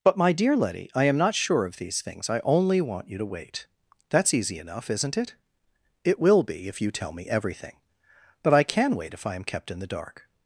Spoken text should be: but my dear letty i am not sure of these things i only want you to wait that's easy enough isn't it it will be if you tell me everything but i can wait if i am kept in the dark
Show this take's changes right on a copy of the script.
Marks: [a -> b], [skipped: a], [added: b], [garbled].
but my dear letty i am not sure of these things i only want you to wait that's easy enough isn't it it will be if you tell me everything but i can wait if i am kept in the dark